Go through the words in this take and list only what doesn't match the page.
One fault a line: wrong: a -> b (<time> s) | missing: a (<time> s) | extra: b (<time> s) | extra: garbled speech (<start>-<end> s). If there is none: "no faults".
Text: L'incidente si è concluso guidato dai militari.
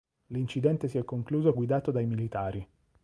no faults